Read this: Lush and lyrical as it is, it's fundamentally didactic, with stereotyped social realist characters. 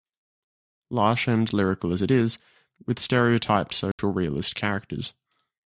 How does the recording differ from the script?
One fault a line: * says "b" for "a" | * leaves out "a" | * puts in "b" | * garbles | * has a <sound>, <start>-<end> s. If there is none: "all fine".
* leaves out "it's fundamentally didactic"
* has a dropout, 3.9-4.0 s